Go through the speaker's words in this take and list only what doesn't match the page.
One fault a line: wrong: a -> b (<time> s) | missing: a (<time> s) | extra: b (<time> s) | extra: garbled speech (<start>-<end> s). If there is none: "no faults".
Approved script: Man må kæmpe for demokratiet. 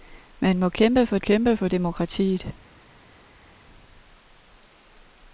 extra: kæmpe for (1.2 s)